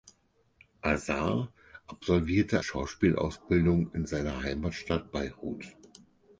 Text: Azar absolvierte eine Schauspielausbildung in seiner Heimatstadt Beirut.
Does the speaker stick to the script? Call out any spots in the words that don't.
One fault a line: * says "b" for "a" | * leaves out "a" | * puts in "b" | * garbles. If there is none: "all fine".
* leaves out "eine"